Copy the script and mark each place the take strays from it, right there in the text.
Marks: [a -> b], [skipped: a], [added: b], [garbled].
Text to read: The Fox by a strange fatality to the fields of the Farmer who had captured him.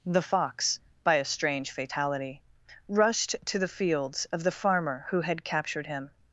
The Fox by a strange fatality [added: rushed] to the fields of the Farmer who had captured him.